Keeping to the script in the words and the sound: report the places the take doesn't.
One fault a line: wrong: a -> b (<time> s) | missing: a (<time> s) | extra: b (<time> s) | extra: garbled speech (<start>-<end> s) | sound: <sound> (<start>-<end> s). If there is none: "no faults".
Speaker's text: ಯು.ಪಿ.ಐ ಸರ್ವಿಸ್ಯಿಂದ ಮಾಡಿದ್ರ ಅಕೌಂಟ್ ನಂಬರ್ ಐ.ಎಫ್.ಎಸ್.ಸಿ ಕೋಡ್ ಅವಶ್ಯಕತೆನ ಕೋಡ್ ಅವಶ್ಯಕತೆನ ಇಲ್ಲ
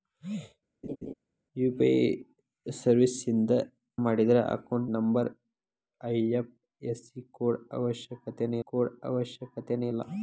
sound: laugh (0.8-1.1 s)